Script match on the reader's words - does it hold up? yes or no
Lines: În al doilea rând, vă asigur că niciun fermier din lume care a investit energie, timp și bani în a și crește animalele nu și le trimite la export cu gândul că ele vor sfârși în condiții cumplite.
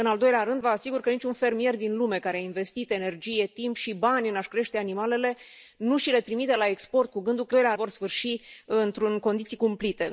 no